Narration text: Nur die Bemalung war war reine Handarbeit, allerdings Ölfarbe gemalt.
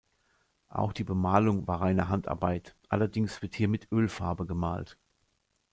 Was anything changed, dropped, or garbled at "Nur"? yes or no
yes